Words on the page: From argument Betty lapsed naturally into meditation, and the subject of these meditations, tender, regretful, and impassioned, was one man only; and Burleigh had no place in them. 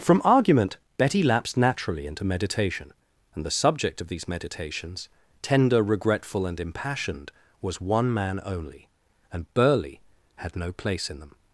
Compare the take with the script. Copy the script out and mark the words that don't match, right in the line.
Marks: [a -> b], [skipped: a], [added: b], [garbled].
From argument Betty lapsed naturally into meditation, and the subject of these meditations, tender, regretful, and impassioned, was one man only; and Burleigh had no place in them.